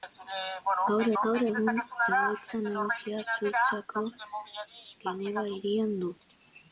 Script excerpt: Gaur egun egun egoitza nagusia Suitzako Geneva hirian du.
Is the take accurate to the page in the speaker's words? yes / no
yes